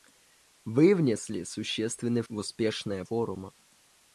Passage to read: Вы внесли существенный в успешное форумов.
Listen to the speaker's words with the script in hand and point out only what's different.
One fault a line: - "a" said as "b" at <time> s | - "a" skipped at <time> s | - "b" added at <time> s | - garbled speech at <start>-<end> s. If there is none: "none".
none